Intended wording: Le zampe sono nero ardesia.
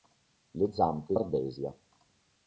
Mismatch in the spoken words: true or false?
true